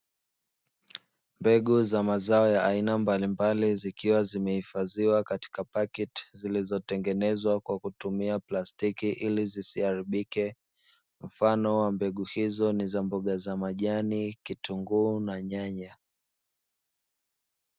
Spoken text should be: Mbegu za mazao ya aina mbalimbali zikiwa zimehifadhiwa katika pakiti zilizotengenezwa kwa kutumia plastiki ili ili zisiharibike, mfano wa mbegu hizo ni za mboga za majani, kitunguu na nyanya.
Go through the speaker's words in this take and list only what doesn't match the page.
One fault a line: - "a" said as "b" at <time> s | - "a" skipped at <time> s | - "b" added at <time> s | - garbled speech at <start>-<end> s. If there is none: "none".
- "ili" skipped at 9.5 s